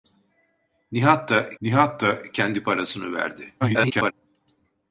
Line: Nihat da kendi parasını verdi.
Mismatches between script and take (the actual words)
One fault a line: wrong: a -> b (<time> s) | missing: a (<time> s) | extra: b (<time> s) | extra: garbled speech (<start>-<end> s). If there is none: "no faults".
extra: nihat da (1.6 s)
extra: garbled speech (3.6-4.1 s)